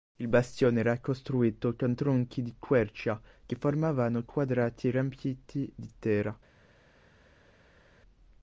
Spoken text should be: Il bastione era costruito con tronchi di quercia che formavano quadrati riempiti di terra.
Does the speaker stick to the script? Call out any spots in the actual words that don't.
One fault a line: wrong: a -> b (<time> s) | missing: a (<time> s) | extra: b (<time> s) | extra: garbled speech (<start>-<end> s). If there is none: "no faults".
no faults